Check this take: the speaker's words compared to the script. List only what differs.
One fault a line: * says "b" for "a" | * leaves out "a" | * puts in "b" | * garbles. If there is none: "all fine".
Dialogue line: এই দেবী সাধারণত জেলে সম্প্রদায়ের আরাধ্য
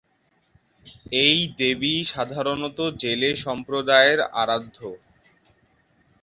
all fine